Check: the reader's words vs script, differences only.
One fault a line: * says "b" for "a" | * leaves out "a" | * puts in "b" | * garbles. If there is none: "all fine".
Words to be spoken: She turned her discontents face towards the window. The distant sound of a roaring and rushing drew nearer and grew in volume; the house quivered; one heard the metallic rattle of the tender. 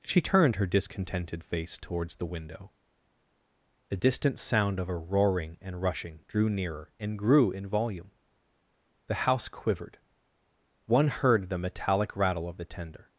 * says "discontented" for "discontents"